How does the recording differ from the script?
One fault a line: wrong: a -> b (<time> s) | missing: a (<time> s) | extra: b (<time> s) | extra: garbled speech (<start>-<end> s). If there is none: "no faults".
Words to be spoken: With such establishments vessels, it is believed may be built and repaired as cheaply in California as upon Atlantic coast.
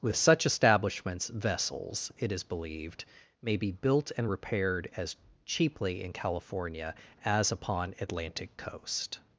no faults